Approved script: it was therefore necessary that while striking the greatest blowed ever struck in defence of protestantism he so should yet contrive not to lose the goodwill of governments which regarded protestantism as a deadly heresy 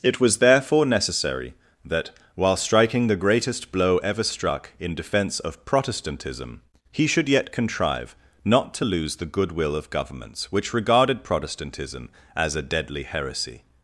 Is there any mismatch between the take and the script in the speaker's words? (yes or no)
yes